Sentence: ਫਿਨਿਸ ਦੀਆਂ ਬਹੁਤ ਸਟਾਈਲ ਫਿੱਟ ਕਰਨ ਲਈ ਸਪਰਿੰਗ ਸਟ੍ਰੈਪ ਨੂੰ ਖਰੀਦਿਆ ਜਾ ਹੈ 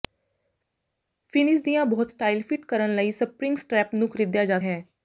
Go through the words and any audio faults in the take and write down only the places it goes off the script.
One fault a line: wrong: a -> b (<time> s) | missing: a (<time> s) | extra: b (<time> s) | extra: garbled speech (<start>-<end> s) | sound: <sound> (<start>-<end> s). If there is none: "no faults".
no faults